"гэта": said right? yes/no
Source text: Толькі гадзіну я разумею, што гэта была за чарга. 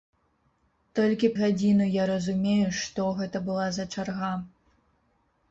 yes